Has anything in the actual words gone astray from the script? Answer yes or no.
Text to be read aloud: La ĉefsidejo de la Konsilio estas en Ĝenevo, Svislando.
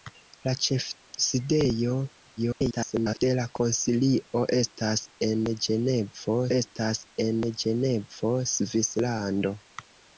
yes